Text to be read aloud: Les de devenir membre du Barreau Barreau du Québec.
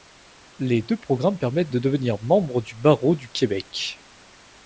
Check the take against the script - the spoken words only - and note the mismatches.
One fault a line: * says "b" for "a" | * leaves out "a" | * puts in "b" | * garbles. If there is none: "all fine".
* puts in "deux programmes permettent"
* leaves out "Barreau"